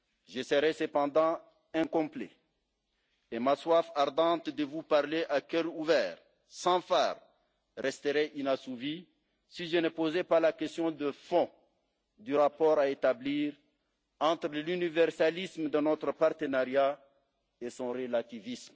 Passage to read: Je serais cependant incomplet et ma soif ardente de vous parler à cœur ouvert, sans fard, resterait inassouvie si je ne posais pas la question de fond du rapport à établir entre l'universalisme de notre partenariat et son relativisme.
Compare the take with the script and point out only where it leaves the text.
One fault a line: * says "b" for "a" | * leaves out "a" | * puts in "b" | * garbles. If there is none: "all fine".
all fine